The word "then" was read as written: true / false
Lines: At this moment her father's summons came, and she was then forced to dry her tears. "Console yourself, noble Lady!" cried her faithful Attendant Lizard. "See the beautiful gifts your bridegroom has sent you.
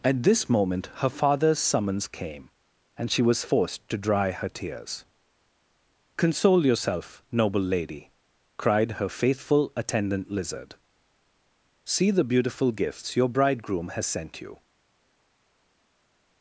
false